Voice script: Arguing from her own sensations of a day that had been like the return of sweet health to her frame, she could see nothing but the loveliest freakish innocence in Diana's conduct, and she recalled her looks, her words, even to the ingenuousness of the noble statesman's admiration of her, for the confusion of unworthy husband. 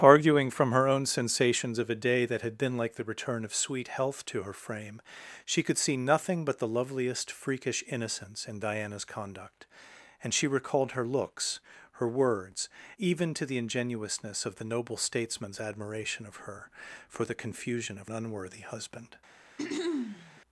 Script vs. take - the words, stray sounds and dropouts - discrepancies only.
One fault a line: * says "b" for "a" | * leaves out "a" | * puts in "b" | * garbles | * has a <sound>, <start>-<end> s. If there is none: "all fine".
* has a throat clearing, 19.6-20.4 s